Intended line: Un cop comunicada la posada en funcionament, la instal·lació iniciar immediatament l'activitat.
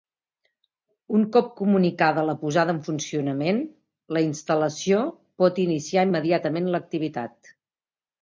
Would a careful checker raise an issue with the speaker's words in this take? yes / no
yes